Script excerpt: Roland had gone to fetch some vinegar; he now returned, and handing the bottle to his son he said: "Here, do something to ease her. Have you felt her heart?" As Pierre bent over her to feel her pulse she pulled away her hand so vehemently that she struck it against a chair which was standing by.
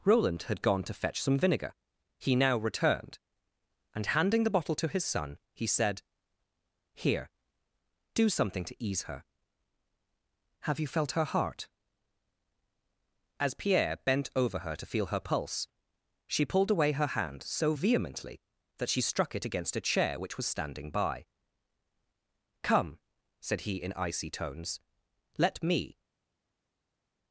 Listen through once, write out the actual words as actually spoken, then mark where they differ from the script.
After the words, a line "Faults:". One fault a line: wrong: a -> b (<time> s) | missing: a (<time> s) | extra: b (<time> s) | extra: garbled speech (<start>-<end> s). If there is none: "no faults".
Roland had gone to fetch some vinegar; he now returned, and handing the bottle to his son he said: "Here, do something to ease her. Have you felt her heart?" As Pierre bent over her to feel her pulse she pulled away her hand so vehemently that she struck it against a chair which was standing by. "Come," said he in icy tones, "let me
Faults:
extra: Come said he in icy tones let me (22.6 s)